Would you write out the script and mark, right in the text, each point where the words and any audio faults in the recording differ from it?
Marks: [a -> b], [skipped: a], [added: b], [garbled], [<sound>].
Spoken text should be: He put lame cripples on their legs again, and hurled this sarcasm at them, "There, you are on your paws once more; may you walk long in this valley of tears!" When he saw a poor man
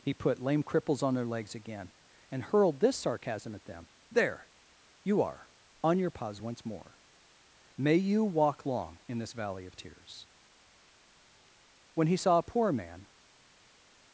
He put lame cripples on their legs again, and hurled this sarcasm at them, "There, you are on your paws once more; may you walk long in this valley of tears!" When he saw a poor man